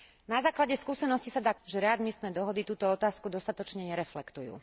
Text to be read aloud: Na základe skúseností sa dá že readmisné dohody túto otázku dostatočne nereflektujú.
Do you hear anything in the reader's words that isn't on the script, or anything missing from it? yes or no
no